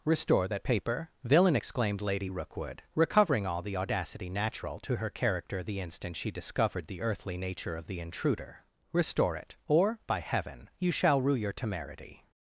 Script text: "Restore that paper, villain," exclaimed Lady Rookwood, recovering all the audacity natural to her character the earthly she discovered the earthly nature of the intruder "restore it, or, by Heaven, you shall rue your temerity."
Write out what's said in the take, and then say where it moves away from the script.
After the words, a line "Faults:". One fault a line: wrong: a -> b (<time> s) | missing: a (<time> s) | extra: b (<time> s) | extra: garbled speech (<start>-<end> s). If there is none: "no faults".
"Restore that paper, villain," exclaimed Lady Rookwood, recovering all the audacity natural to her character the instant she discovered the earthly nature of the intruder "restore it, or, by Heaven, you shall rue your temerity."
Faults:
wrong: earthly -> instant (5.8 s)